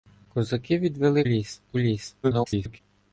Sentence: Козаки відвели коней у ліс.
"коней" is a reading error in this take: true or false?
true